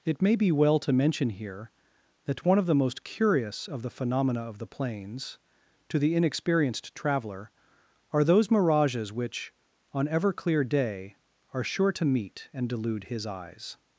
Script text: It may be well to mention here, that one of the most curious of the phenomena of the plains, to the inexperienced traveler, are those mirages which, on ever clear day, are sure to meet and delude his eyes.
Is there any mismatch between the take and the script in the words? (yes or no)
no